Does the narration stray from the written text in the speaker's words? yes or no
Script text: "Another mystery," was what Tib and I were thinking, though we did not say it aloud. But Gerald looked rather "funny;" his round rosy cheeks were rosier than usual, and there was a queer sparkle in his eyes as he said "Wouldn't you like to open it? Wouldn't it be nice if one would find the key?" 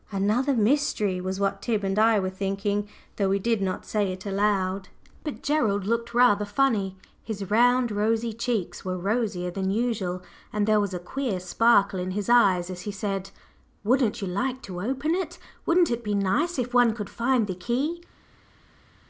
yes